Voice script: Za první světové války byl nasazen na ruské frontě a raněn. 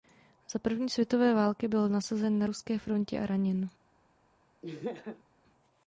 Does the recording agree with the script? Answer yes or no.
yes